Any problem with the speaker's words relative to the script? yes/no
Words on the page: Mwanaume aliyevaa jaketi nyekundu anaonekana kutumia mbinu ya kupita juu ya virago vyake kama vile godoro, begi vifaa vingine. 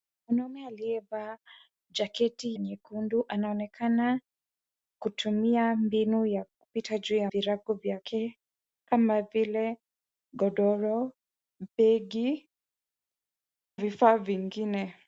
no